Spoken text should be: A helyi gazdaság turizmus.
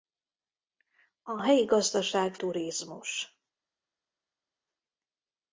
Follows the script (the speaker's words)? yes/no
yes